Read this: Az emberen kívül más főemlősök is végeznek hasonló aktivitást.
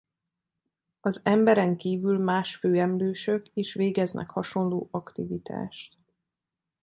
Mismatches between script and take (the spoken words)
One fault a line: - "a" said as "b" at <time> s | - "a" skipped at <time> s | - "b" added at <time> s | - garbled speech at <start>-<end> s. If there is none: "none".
none